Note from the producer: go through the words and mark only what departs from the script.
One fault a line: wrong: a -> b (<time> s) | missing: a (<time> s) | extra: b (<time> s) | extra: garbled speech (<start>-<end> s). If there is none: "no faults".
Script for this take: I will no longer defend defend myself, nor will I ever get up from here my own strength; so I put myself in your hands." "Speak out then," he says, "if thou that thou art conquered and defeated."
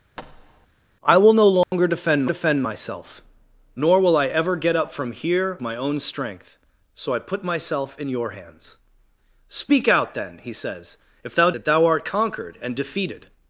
no faults